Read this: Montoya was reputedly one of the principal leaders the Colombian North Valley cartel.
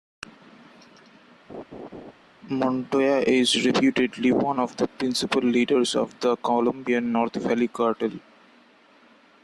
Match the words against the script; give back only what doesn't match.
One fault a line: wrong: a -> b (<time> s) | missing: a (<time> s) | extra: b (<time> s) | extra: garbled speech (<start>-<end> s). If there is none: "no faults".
wrong: was -> is (3.2 s)
extra: of (5.9 s)